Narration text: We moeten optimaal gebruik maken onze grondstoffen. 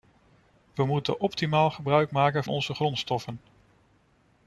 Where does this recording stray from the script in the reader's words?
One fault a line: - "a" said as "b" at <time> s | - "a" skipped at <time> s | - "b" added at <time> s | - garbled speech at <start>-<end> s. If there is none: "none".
none